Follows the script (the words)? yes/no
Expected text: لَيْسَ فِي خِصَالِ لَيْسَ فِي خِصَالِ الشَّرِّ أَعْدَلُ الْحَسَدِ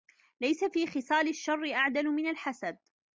no